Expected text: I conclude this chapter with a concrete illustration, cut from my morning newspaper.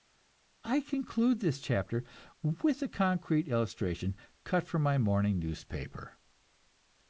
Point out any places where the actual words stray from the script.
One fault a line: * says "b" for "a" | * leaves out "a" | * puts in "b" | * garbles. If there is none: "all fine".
all fine